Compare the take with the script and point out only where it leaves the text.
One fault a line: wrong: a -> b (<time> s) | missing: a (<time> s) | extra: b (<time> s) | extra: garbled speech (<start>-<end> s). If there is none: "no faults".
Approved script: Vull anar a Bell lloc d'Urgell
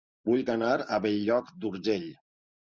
no faults